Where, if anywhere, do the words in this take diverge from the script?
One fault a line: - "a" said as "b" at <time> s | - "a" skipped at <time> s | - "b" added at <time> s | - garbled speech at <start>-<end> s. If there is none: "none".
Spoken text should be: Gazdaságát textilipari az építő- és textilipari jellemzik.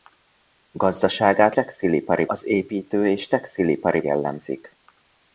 none